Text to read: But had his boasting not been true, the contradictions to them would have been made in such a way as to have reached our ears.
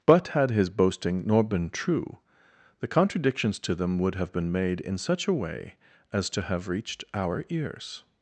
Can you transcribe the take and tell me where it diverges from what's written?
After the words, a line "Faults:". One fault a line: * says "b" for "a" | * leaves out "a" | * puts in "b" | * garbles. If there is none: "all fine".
But had his boasting nor been true, the contradictions to them would have been made in such a way as to have reached our ears.
Faults:
* says "nor" for "not"